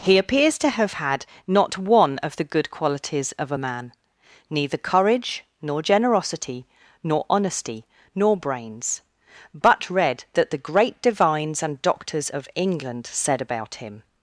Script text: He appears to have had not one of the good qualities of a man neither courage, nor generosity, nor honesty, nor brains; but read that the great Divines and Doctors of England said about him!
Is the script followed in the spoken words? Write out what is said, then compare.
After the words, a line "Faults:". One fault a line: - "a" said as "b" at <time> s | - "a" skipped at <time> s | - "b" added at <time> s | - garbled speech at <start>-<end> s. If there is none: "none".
He appears to have had not one of the good qualities of a man neither courage, nor generosity, nor honesty, nor brains; but read that the great Divines and Doctors of England said about him!
Faults:
none